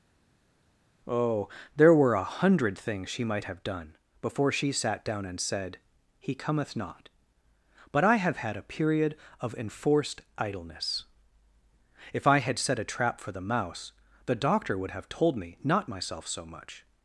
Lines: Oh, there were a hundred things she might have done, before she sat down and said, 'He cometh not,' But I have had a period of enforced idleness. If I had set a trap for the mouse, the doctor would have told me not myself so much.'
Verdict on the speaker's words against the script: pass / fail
pass